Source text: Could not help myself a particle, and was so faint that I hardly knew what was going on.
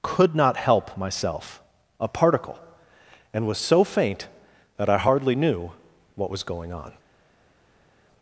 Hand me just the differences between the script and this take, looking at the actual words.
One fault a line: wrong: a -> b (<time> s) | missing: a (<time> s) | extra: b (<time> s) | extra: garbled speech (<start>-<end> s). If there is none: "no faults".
no faults